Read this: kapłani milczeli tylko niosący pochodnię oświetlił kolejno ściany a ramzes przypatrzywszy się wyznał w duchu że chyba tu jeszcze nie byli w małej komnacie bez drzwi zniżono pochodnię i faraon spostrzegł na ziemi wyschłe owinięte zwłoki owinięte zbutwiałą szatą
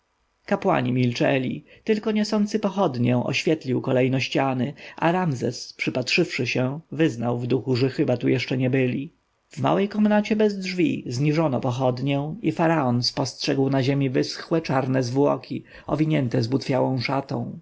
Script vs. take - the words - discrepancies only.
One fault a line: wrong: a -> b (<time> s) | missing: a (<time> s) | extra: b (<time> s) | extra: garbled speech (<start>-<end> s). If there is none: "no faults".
wrong: owinięte -> czarne (14.6 s)